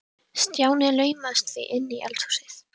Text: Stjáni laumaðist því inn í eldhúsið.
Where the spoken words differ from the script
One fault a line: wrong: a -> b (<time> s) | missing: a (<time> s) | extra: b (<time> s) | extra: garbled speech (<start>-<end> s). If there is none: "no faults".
no faults